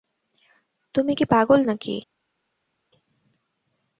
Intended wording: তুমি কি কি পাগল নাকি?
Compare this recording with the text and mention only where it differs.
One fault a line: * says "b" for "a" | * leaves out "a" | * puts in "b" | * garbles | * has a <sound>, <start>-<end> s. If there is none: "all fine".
* leaves out "কি"